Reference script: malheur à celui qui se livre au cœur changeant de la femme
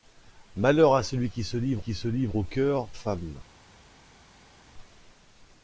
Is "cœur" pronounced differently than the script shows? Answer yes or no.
yes